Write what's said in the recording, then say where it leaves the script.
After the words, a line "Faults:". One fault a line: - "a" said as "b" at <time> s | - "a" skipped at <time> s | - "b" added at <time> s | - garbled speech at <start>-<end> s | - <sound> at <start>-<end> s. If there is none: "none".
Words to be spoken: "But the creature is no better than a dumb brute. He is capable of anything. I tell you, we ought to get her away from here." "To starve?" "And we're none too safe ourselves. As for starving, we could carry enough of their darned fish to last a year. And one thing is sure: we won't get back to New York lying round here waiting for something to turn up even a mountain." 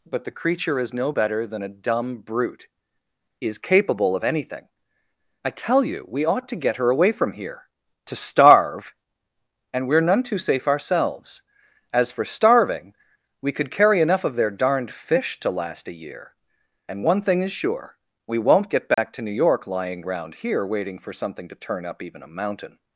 "But the creature is no better than a dumb brute. is capable of anything. I tell you, we ought to get her away from here." "To starve?" "And we're none too safe ourselves. As for starving, we could carry enough of their darned fish to last a year. And one thing is sure: we won't get back to New York lying round here waiting for something to turn up even a mountain."
Faults:
- "He" skipped at 2.7 s
- dropout at 18.9-19.0 s